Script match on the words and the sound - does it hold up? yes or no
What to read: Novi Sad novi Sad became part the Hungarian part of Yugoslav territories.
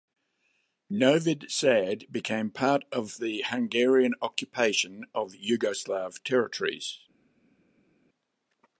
no